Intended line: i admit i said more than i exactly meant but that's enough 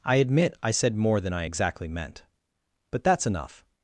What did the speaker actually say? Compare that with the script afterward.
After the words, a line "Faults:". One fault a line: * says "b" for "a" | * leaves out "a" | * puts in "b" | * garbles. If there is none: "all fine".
i admit i said more than i exactly meant but that's enough
Faults:
all fine